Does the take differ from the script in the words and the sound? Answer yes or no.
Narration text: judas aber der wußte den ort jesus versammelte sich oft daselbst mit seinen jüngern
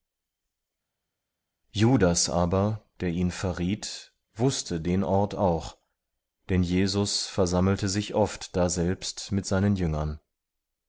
yes